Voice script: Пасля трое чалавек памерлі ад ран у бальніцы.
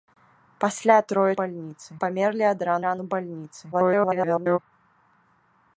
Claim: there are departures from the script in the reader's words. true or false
true